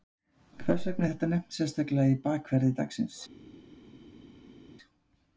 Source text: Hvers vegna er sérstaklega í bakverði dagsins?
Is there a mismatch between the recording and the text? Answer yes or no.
yes